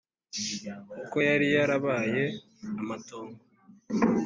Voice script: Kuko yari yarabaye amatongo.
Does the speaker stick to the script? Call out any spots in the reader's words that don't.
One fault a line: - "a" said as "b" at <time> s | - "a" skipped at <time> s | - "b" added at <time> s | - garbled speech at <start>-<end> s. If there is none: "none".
none